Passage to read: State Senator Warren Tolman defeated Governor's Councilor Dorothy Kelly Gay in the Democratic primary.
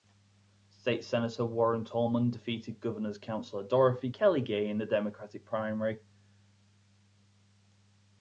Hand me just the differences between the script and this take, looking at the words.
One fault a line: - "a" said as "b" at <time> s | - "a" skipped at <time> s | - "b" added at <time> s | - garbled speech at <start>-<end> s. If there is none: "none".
none